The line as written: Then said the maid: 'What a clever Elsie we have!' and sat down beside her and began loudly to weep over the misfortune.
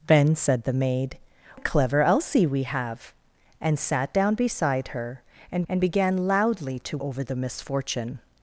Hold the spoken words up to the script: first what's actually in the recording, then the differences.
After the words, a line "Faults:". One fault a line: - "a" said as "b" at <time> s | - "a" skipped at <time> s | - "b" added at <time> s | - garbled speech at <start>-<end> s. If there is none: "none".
Then said the maid: 'A clever Elsie we have!' and sat down beside her and and began loudly to over the misfortune.
Faults:
- "What" skipped at 1.2 s
- "and" added at 5.7 s
- "weep" skipped at 7.0 s